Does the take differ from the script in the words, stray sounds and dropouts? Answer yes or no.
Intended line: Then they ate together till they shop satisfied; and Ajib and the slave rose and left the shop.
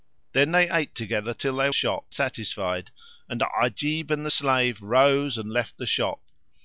no